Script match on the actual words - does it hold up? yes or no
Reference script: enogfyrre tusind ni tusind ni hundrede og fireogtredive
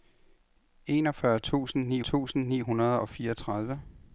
yes